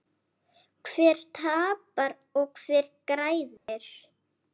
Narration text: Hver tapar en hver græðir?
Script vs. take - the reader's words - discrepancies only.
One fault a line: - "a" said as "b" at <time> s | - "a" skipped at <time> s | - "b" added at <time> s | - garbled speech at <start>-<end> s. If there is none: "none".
- "en" said as "og" at 2.4 s